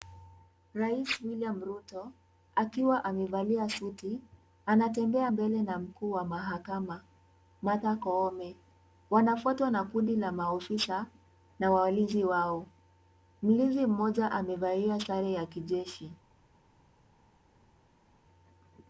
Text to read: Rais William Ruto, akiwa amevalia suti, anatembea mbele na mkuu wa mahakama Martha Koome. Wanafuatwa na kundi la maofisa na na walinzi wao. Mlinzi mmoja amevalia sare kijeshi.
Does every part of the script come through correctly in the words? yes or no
no